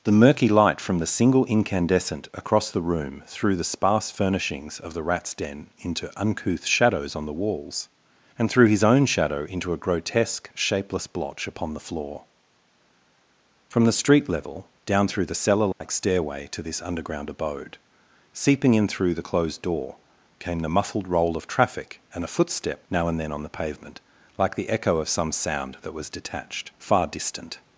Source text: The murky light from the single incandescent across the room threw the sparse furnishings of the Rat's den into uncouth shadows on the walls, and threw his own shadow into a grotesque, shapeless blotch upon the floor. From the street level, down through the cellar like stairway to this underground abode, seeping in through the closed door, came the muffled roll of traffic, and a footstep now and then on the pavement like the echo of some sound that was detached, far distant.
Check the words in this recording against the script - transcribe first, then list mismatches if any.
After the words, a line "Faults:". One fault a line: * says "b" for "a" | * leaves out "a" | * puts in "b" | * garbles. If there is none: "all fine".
The murky light from the single incandescent across the room threw the sparse furnishings of the Rat's den into uncouth shadows on the walls, and threw his own shadow into a grotesque, shapeless blotch upon the floor. From the street level, down through the cellar like stairway to this underground abode, seeping in through the closed door, came the muffled roll of traffic, and a footstep now and then on the pavement like the echo of some sound that was detached, far distant.
Faults:
all fine